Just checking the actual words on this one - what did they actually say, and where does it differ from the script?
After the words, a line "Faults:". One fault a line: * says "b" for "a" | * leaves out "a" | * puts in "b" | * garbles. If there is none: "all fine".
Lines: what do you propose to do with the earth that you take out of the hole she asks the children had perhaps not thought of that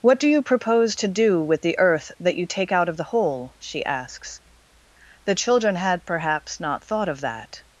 what do you propose to do with the earth that you take out of the hole she asks the children had perhaps not thought of that
Faults:
all fine